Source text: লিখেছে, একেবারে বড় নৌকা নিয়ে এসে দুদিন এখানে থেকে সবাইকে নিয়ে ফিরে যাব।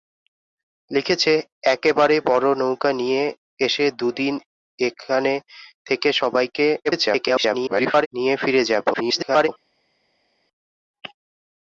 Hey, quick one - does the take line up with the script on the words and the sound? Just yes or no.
no